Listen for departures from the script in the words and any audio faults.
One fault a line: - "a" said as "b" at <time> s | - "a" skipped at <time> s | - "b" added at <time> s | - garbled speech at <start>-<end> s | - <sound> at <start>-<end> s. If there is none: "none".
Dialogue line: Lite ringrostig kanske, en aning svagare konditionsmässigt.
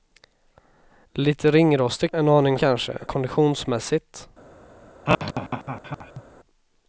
- "kanske" skipped at 2.1 s
- "svagare" said as "kanske" at 2.6 s
- laugh at 5.1-6.2 s